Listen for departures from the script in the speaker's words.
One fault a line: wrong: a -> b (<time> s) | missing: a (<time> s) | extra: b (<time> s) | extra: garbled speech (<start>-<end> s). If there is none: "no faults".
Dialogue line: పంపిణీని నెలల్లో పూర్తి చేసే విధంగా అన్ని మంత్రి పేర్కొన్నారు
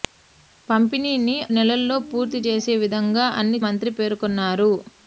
no faults